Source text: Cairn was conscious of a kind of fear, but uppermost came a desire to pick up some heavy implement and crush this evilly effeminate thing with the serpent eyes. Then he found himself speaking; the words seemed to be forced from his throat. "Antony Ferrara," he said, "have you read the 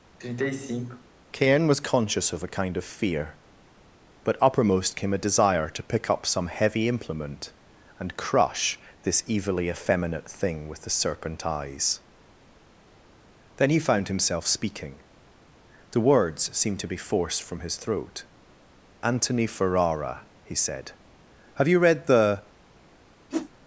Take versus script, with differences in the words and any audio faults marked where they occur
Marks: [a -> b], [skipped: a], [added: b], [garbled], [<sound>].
[sigh] Cairn was conscious of a kind of fear, but uppermost came a desire to pick up some heavy implement and crush this evilly effeminate thing with the serpent eyes. Then he found himself speaking; the words seemed to be forced from his throat. "Antony Ferrara," he said, "have you read the [whoosh]